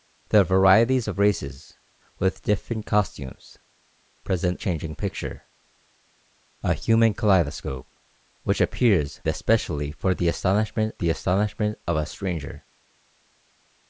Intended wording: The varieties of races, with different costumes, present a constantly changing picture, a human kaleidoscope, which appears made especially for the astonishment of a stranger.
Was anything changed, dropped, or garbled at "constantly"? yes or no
yes